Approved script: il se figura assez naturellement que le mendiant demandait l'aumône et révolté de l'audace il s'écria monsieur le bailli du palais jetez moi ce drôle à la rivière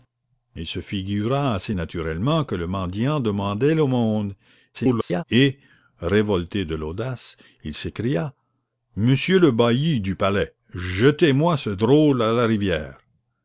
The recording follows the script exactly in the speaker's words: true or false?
false